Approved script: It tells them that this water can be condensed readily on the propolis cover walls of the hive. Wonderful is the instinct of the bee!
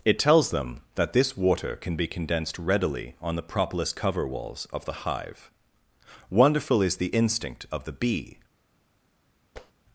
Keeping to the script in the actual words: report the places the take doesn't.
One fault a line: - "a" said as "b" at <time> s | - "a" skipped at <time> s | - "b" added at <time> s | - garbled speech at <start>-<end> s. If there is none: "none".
none